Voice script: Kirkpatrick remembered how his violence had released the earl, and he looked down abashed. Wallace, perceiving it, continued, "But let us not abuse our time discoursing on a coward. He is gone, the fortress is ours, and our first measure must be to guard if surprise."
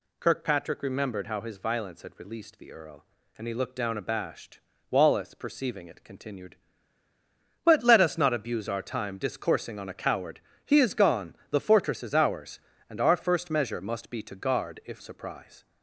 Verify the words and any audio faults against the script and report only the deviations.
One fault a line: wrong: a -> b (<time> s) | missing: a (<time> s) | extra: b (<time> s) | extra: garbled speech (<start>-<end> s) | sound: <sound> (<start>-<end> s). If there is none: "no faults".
no faults